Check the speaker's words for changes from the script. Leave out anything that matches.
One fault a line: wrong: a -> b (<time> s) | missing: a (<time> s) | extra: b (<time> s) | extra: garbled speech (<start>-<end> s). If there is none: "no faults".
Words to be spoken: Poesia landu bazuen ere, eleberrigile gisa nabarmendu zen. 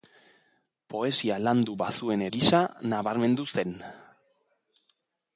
missing: ere eleberrigile (2.2 s)